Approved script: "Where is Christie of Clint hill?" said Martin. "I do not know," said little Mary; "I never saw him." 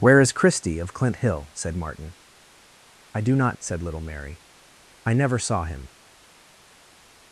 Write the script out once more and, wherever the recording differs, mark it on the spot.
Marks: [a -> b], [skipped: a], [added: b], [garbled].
"Where is Christie of Clint hill?" said Martin. "I do not [skipped: know,"] said little Mary; "I never saw him."